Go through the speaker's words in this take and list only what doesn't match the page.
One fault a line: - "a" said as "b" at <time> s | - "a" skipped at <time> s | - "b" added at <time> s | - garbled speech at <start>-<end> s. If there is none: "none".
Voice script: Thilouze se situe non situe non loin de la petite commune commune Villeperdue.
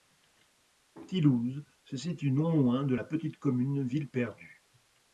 - "situe non" skipped at 2.5 s
- "commune" skipped at 3.8 s